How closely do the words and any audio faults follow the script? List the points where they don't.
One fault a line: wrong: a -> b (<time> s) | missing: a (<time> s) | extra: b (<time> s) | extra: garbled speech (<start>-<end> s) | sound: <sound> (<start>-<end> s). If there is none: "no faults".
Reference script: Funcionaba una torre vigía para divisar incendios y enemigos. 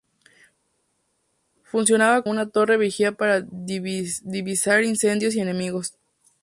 no faults